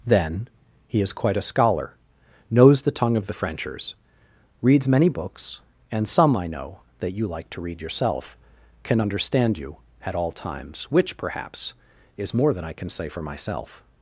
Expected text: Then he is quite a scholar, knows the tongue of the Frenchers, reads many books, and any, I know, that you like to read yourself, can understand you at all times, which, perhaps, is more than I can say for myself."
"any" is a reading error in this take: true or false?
true